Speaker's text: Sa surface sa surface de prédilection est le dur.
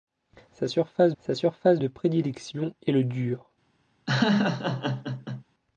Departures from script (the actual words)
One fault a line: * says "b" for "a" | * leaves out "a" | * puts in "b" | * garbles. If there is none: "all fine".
all fine